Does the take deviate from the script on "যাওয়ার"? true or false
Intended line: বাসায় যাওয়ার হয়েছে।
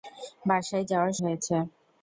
false